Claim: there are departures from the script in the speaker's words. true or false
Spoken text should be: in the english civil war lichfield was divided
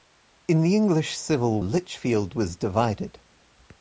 true